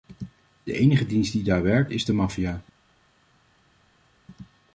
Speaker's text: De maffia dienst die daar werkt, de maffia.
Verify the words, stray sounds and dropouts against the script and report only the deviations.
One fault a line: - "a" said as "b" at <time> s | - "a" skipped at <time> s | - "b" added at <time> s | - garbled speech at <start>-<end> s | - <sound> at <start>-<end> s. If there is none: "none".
- "maffia" said as "enige" at 0.7 s
- "is" added at 1.9 s